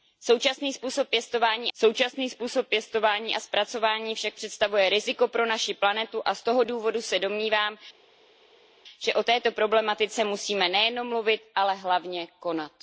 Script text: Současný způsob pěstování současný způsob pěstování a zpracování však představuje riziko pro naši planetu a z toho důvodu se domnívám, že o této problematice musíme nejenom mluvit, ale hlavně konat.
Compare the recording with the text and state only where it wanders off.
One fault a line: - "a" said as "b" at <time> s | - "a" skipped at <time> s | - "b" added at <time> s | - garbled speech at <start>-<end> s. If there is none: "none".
none